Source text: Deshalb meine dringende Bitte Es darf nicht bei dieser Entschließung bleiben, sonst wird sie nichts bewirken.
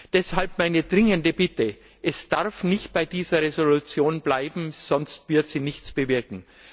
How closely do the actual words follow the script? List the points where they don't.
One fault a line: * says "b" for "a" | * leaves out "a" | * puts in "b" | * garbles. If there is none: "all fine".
all fine